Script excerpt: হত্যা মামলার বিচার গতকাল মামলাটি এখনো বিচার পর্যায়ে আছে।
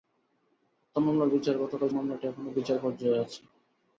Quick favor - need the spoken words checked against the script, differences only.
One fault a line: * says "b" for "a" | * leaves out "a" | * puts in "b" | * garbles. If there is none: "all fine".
all fine